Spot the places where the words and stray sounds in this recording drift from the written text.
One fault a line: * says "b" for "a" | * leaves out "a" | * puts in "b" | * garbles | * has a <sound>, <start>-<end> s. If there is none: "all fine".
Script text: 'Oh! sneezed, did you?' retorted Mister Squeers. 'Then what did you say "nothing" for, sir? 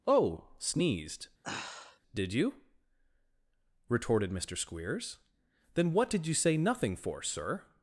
* has a sigh, 1.4-2.0 s